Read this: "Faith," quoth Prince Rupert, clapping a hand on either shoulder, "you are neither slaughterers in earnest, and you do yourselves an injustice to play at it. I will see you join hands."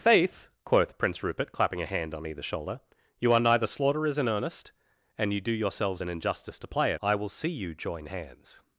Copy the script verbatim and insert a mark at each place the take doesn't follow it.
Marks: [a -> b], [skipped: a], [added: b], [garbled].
"Faith," quoth Prince Rupert, clapping a hand on either shoulder, "you are neither slaughterers in earnest, and you do yourselves an injustice to play at [skipped: it.] I will see you join hands."